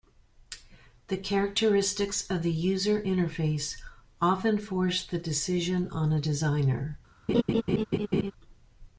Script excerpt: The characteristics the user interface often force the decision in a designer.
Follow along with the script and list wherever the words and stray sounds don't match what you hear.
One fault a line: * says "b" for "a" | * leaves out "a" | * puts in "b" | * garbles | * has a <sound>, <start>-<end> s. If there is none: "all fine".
* puts in "of"
* says "on" for "in"
* has a laugh, 7.3-8.3 s